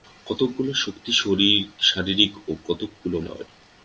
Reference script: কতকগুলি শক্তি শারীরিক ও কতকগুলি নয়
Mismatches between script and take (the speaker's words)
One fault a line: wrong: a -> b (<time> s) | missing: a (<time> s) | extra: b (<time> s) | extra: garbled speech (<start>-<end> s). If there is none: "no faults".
no faults